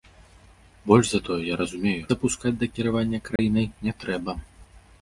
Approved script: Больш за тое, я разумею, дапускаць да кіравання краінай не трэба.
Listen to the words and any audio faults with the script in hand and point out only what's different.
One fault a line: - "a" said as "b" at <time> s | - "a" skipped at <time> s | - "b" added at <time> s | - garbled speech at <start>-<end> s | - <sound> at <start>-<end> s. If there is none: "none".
- dropout at 3.4-3.4 s